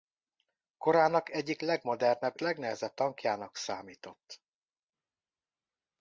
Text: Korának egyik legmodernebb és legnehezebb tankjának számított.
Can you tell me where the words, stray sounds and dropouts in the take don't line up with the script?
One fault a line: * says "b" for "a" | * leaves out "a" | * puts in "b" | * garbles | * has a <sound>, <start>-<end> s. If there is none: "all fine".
* leaves out "és"